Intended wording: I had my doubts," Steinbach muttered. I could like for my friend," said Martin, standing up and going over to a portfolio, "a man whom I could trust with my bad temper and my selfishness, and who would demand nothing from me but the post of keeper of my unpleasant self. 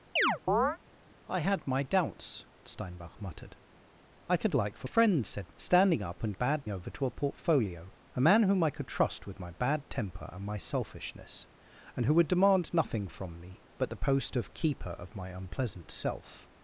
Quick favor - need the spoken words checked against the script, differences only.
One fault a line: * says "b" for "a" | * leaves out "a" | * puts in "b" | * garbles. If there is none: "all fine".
* leaves out "my"
* leaves out "Martin"
* says "bad" for "going"